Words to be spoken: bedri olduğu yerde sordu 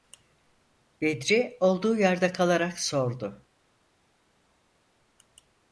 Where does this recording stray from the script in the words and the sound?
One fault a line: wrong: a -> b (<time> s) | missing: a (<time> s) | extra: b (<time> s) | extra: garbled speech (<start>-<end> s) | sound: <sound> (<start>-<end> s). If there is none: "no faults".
extra: kalarak (2.3 s)